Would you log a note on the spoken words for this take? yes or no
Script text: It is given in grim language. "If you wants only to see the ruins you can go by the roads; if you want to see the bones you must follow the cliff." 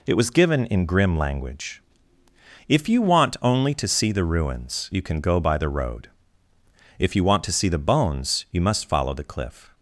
yes